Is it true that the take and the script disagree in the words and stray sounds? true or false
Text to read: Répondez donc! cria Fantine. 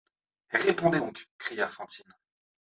false